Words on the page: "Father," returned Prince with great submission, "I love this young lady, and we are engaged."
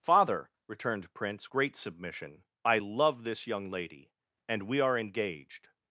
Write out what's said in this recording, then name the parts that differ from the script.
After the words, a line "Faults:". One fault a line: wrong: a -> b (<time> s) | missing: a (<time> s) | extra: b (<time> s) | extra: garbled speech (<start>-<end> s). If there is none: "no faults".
"Father," returned Prince great submission, "I love this young lady, and we are engaged."
Faults:
missing: with (1.5 s)